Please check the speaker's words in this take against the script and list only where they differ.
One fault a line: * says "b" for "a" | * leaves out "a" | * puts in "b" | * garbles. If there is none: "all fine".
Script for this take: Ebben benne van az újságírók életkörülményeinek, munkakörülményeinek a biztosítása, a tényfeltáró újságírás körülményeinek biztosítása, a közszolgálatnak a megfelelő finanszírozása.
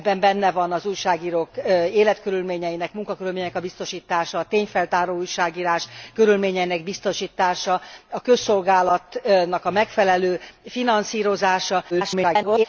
* garbles